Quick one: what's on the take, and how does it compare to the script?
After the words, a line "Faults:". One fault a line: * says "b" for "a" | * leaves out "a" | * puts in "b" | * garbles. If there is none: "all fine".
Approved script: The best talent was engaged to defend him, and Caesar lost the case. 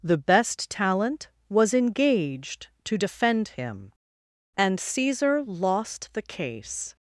The best talent was engaged to defend him, and Caesar lost the case.
Faults:
all fine